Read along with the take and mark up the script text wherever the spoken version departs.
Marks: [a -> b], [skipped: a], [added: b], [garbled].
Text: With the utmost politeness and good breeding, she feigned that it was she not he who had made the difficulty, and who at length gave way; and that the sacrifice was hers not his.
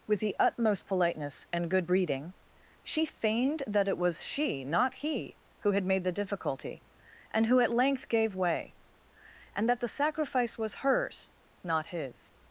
With the utmost politeness and good breeding, she feigned that it was she not he who had made the difficulty, and who at length gave way; and that the sacrifice was hers not his.